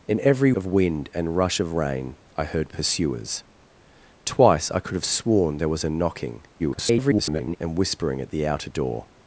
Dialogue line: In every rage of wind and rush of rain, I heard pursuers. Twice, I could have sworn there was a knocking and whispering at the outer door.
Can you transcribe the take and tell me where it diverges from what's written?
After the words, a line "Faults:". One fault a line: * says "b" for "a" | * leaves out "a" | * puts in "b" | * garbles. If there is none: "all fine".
In every of wind and rush of rain, I heard pursuers. Twice, I could have sworn there was a knocking [garbled] and whispering at the outer door.
Faults:
* leaves out "rage"
* garbles